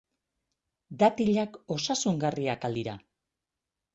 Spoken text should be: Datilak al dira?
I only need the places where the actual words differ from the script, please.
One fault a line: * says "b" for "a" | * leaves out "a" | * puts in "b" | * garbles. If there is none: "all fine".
* puts in "osasungarriak"